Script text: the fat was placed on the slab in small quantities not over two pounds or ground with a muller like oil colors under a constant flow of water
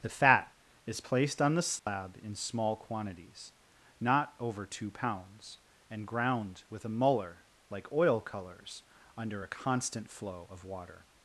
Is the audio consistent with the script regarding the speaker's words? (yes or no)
no